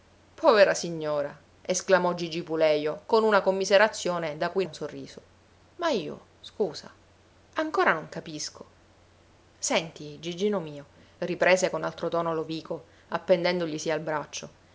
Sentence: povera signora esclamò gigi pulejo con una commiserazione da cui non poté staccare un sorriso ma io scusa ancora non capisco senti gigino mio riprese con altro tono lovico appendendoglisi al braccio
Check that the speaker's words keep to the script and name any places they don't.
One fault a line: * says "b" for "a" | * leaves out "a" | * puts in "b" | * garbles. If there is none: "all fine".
* leaves out "non poté staccare"